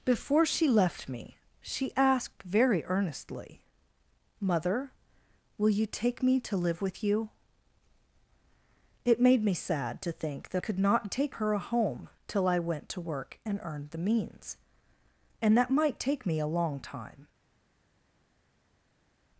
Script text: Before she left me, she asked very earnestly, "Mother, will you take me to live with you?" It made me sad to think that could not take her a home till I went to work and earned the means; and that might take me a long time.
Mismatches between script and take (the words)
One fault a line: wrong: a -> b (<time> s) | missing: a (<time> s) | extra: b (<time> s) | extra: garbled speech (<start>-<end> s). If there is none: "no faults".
no faults